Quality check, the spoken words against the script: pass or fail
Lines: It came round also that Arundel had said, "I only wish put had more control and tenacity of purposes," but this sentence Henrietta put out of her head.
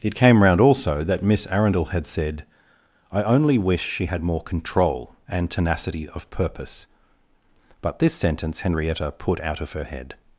fail